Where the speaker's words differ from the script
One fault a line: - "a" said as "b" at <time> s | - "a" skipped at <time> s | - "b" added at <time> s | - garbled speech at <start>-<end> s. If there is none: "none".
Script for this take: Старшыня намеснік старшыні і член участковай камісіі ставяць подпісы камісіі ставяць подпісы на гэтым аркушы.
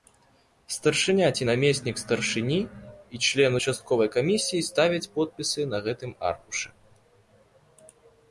- "ці" added at 1.4 s
- "камісіі ставяць подпісы" skipped at 5.6 s